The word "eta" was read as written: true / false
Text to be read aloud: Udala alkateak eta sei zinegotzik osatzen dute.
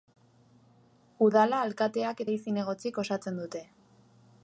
false